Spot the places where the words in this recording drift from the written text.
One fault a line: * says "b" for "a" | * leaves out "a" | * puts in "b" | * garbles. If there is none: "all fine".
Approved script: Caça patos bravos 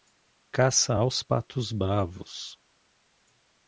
* puts in "aos"